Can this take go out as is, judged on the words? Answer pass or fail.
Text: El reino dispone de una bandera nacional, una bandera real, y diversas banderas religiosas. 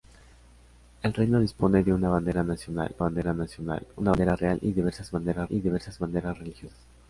fail